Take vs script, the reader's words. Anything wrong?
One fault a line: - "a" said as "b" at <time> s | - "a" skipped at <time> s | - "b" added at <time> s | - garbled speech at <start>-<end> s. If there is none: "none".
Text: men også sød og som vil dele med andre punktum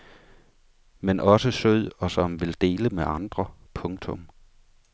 none